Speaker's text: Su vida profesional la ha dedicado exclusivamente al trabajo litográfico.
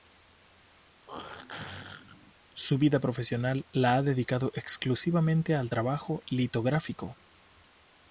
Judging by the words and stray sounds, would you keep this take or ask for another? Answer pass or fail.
fail